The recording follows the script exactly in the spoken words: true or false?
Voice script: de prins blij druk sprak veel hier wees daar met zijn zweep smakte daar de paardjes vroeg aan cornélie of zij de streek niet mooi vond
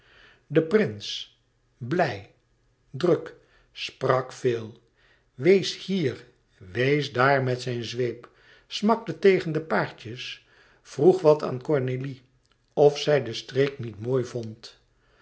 false